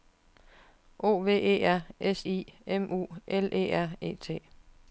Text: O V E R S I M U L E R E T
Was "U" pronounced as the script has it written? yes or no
yes